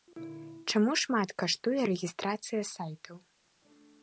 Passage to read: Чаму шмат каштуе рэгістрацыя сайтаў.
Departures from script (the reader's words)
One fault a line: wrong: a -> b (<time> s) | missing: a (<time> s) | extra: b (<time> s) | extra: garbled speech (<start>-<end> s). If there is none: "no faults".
no faults